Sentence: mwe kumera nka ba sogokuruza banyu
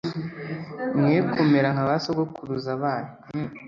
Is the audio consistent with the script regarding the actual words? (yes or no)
yes